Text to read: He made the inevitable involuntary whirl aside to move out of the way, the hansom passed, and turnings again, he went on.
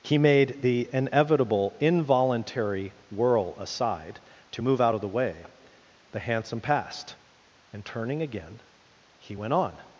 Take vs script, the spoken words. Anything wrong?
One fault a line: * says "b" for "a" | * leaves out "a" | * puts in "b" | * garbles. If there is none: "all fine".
* says "turning" for "turnings"